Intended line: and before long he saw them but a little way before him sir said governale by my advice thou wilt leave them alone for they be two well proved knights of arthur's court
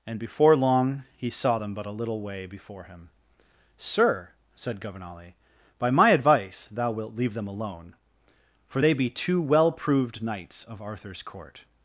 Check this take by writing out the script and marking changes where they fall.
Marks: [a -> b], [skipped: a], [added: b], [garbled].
and before long he saw them but a little way before him sir said governale by my advice thou wilt leave them alone for they be two well proved knights of arthur's court